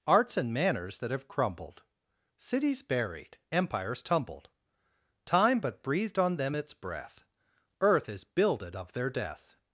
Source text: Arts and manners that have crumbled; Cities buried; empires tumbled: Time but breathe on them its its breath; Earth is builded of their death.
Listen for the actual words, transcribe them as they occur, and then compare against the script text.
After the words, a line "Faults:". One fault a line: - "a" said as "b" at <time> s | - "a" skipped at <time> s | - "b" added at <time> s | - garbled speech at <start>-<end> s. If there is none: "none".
Arts and manners that have crumbled; Cities buried; empires tumbled: Time but breathed on them its breath; Earth is builded of their death.
Faults:
- "breathe" said as "breathed" at 5.8 s
- "its" skipped at 6.7 s